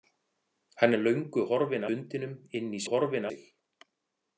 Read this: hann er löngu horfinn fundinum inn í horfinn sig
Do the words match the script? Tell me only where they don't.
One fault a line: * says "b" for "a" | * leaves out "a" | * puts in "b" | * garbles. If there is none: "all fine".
all fine